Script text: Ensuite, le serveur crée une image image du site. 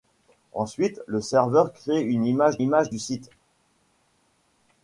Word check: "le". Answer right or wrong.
right